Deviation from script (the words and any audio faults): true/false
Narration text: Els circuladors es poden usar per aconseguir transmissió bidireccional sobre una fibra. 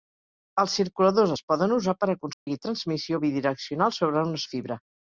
true